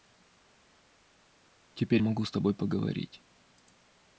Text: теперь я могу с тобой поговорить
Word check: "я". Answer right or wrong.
wrong